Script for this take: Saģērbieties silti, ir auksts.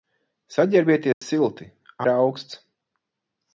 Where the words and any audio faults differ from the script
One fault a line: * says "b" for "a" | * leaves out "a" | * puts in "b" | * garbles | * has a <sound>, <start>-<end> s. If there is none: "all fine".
* has a dropout, 1.1-1.2 s